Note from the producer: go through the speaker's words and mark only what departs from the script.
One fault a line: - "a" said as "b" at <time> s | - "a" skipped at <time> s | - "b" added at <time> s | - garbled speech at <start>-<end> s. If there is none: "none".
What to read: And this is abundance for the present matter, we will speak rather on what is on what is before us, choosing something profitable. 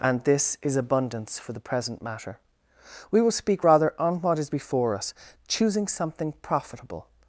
- "on what is" skipped at 4.5 s